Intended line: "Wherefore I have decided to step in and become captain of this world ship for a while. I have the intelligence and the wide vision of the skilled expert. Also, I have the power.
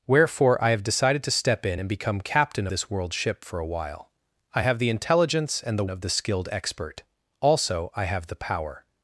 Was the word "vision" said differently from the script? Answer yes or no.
yes